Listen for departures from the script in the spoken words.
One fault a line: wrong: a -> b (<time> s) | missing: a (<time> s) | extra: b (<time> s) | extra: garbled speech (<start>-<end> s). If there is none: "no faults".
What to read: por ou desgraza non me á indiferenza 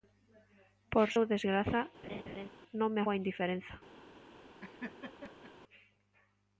no faults